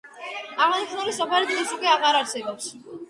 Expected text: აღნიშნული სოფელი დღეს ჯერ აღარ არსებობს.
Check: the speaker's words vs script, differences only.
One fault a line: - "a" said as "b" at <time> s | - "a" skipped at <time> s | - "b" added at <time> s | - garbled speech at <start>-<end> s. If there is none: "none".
- "ჯერ" said as "უკვე" at 1.8 s